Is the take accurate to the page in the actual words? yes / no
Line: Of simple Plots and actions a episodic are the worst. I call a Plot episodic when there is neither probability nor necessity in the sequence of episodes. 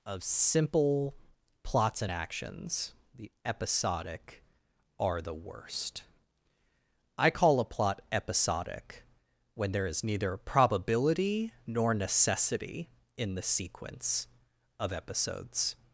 no